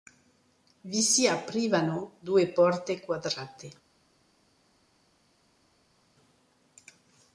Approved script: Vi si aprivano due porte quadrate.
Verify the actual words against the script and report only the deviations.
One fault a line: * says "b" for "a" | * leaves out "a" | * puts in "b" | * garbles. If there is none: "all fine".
all fine